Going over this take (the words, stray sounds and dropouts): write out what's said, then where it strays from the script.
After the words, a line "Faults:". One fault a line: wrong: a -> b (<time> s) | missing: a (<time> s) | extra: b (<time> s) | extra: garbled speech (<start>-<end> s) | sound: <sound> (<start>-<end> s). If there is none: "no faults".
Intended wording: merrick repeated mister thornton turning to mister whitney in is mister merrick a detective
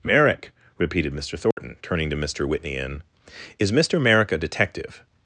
merrick repeated mister thornton turning to mister whitney in is mister merrick a detective
Faults:
sound: dropout (1.5-1.6 s)